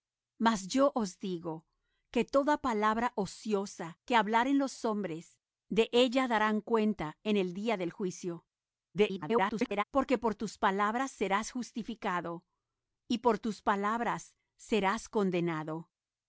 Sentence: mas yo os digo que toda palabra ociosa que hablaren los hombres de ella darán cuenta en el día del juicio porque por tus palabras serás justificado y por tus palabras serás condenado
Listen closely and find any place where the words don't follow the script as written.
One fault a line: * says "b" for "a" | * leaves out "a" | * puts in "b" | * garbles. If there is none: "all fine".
* garbles